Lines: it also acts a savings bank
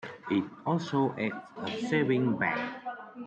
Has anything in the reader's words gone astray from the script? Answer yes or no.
no